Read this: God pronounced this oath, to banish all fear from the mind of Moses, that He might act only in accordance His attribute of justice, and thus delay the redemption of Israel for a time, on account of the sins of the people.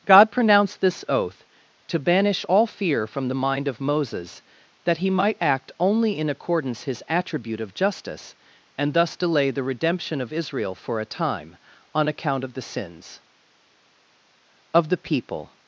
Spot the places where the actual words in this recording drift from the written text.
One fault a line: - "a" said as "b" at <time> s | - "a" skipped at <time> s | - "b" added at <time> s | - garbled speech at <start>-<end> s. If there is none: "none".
none